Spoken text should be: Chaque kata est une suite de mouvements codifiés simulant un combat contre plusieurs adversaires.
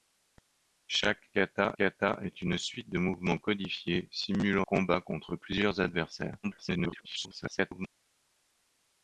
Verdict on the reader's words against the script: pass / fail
fail